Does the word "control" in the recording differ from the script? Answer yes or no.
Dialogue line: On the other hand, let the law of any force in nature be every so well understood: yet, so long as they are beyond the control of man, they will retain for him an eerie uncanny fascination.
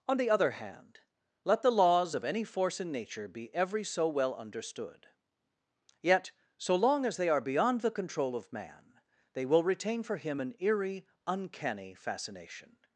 no